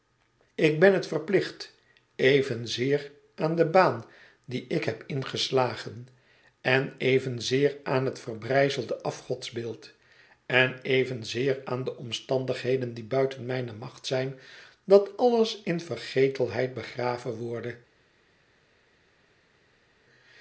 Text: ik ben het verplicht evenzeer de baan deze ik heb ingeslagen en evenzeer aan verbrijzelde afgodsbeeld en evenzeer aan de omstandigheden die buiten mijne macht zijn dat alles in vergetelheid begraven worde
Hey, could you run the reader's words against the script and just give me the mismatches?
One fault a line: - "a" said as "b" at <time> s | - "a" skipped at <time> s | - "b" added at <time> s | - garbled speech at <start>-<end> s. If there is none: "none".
- "aan" added at 3.4 s
- "deze" said as "die" at 4.5 s
- "het" added at 8.1 s